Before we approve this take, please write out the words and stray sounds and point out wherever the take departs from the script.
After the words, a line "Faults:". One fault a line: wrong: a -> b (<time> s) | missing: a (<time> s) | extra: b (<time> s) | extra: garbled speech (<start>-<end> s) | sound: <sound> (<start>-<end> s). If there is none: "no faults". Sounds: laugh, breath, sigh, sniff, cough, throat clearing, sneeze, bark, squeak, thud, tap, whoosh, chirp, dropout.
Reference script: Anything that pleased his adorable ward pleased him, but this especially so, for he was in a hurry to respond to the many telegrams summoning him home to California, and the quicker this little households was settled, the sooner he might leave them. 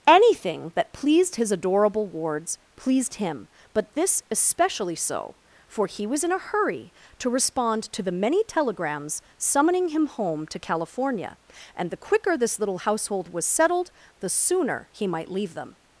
Anything that pleased his adorable wards pleased him, but this especially so, for he was in a hurry to respond to the many telegrams summoning him home to California, and the quicker this little household was settled, the sooner he might leave them.
Faults:
wrong: ward -> wards (2.1 s)
wrong: households -> household (12.8 s)